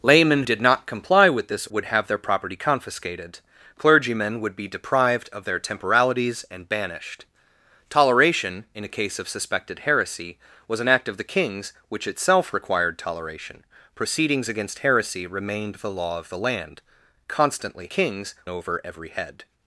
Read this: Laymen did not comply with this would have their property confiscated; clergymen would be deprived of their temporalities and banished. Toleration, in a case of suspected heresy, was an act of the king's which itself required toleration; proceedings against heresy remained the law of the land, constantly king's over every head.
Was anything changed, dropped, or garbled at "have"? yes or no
no